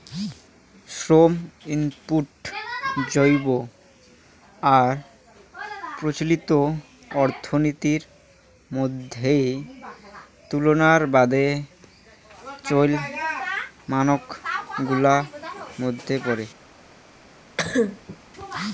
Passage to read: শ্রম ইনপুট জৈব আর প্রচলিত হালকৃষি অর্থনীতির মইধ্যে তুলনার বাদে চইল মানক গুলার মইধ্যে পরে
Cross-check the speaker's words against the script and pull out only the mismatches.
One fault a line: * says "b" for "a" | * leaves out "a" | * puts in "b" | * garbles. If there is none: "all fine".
* leaves out "হালকৃষি"